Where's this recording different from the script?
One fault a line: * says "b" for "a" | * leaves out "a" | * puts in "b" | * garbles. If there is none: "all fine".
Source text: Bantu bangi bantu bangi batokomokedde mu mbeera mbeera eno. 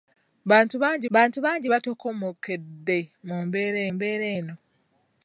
all fine